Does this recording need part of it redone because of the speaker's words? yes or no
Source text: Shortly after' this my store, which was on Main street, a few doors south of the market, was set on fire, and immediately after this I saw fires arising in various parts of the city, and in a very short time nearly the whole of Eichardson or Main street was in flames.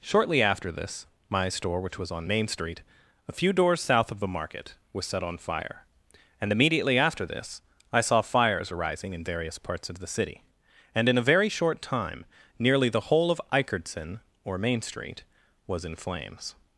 no